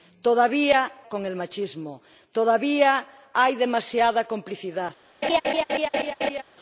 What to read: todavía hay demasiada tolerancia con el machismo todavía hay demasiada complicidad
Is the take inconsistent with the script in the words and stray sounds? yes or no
yes